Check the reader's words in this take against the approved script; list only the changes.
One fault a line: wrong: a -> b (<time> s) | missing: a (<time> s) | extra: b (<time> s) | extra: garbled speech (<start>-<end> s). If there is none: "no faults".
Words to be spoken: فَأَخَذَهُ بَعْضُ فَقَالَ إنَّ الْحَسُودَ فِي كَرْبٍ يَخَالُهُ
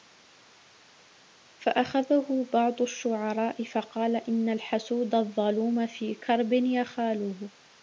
extra: الشُّعَرَاءِ (2.8 s)
extra: الظَّلُومَ (5.1 s)